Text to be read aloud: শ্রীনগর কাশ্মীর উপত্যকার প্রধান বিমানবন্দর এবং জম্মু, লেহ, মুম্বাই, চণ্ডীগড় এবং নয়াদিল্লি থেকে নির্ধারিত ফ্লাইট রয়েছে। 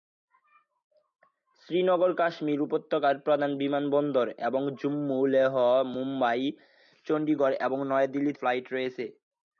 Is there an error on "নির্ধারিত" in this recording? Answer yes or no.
yes